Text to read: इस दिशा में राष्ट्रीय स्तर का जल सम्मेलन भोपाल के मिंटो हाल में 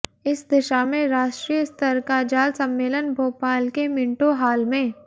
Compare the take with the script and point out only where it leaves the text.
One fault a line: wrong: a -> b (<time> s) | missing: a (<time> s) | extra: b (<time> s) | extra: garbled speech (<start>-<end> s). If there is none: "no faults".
no faults